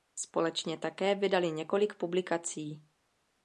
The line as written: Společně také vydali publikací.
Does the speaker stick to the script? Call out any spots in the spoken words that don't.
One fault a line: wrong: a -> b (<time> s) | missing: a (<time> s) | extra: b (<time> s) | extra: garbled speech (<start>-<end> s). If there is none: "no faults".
extra: několik (1.5 s)